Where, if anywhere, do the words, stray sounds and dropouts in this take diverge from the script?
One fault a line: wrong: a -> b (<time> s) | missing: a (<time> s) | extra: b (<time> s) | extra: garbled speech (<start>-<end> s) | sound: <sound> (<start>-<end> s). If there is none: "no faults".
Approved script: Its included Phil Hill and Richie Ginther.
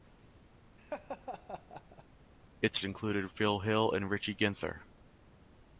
sound: laugh (0.8-2.0 s)